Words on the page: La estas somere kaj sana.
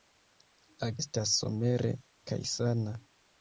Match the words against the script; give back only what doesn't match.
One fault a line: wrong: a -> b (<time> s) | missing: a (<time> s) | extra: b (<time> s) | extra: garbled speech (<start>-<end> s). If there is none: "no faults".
no faults